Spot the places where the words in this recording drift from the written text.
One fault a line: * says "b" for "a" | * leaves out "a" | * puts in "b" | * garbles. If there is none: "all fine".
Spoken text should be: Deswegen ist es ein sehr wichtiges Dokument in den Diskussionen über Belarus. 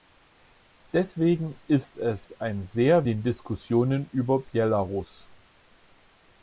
* leaves out "wichtiges Dokument in"